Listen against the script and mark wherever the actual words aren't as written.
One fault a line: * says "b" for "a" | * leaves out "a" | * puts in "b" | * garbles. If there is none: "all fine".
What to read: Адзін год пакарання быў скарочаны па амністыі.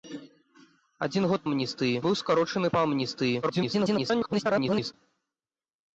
* says "амністыі" for "пакарання"
* garbles